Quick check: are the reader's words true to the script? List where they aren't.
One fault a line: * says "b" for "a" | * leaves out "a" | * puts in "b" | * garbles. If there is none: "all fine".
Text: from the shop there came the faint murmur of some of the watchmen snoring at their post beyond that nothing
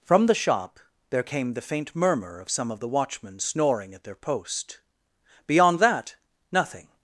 all fine